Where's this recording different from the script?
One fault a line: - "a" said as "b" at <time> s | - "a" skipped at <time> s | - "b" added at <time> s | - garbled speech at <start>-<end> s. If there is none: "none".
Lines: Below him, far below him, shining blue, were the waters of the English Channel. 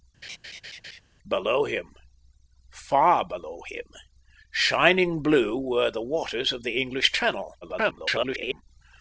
- garbled speech at 7.6-8.6 s